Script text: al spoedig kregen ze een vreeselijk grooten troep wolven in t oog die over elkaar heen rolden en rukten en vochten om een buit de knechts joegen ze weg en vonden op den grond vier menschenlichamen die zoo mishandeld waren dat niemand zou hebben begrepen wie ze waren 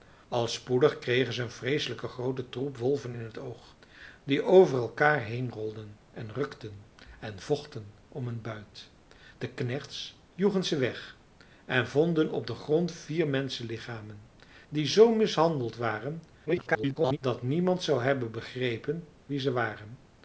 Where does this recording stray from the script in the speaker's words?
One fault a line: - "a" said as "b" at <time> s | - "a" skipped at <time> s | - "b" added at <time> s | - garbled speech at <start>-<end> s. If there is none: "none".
- garbled speech at 16.5-17.2 s